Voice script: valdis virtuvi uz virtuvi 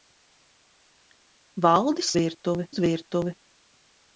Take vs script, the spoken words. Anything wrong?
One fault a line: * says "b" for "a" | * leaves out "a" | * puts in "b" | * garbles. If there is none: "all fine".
all fine